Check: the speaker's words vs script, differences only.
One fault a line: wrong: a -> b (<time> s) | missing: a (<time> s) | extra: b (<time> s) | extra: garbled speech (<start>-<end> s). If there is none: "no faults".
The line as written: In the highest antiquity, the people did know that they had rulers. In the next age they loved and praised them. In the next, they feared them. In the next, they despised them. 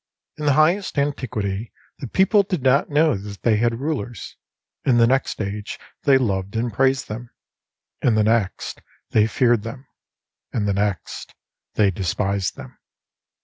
extra: not (2.6 s)